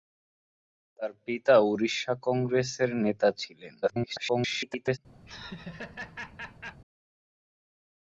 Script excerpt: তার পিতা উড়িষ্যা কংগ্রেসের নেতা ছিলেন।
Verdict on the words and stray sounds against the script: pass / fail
fail